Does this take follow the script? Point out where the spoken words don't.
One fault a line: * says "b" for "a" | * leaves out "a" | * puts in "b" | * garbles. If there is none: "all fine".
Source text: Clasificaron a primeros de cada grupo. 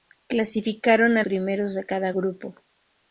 all fine